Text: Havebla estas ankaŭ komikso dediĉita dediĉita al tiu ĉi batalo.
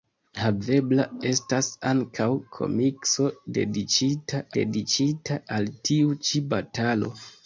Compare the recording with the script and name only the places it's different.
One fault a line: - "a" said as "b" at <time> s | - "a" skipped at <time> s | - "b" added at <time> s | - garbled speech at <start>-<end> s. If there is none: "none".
none